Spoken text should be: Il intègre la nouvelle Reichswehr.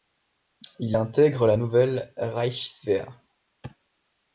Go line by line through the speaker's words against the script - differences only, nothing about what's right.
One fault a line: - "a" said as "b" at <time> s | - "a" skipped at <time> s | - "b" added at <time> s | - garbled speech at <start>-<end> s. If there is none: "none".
none